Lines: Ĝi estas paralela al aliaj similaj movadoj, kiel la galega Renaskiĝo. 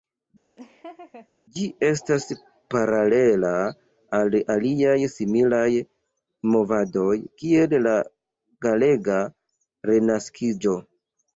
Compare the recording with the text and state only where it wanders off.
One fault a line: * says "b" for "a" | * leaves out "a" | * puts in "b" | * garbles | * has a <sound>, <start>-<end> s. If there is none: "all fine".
* has a laugh, 0.6-1.3 s